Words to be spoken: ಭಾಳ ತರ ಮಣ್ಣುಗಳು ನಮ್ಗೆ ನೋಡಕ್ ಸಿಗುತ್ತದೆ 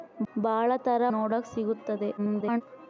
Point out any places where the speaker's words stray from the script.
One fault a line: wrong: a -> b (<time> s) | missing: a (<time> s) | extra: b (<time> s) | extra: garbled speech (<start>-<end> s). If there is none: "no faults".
missing: ಮಣ್ಣುಗಳು ನಮ್ಗೆ (1.0 s)
extra: garbled speech (2.2-2.6 s)